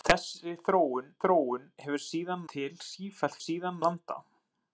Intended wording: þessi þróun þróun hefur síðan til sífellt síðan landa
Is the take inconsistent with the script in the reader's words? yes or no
no